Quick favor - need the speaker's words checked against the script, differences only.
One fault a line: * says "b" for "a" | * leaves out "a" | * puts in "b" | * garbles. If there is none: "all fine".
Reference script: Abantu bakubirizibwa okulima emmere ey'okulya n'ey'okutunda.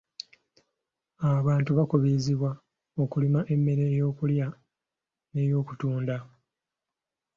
all fine